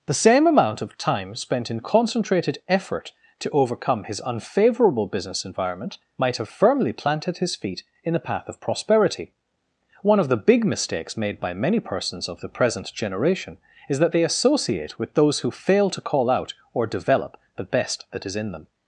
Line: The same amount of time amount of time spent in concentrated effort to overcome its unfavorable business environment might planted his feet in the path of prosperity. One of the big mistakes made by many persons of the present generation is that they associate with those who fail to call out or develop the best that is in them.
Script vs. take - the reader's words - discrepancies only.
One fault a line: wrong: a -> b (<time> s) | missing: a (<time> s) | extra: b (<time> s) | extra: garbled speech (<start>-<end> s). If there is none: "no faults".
missing: amount of time (1.4 s)
wrong: its -> his (4.0 s)
extra: have firmly (6.4 s)